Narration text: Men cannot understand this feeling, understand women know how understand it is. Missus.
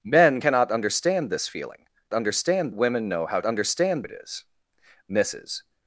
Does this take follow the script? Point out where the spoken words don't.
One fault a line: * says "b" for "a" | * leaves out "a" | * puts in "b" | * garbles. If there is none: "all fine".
all fine